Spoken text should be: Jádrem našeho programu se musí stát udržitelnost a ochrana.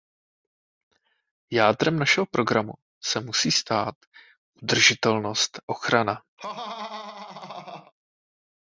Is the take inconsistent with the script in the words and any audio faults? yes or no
yes